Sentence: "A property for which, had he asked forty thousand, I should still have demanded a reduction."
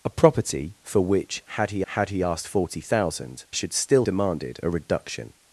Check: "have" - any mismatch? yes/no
yes